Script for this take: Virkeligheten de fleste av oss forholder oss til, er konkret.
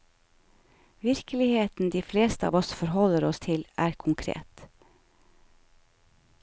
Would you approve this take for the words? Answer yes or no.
yes